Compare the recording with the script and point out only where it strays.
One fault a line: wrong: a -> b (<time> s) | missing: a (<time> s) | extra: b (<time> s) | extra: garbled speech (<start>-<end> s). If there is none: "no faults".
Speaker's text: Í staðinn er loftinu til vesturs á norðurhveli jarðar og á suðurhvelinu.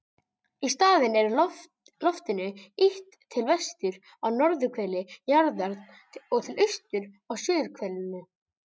extra: ýtt (2.9 s)
extra: til austurs (6.5 s)